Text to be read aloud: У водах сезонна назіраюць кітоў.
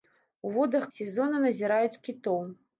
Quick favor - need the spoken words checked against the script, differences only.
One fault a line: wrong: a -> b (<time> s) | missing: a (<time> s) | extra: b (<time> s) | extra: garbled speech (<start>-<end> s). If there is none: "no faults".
no faults